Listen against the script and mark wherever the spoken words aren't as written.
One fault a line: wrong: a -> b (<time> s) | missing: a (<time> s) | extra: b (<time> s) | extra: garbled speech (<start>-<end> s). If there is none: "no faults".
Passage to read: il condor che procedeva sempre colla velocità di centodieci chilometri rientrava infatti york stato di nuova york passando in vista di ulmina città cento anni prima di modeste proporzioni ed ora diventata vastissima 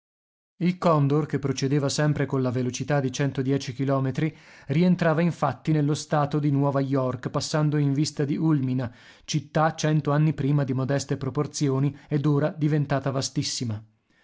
wrong: york -> nello (5.7 s)